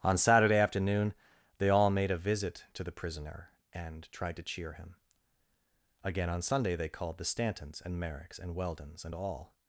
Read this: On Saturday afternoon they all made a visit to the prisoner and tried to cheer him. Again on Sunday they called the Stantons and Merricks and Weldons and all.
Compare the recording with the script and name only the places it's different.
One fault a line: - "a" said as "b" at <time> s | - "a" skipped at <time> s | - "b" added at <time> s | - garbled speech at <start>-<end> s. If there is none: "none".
none